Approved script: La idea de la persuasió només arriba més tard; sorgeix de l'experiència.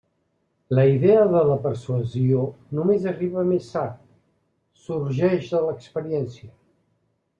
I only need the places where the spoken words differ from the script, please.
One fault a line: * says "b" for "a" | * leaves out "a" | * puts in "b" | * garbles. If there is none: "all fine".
all fine